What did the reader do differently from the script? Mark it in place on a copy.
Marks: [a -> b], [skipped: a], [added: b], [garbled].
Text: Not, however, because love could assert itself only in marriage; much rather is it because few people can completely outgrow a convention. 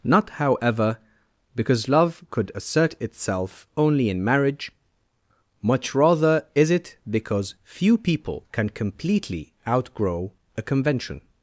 Not, however, because love could assert itself only in marriage; much rather is it because few people can completely outgrow a convention.